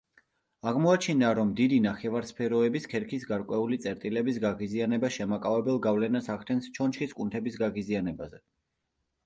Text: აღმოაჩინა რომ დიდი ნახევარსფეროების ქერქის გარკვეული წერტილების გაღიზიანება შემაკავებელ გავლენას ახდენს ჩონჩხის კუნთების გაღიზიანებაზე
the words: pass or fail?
pass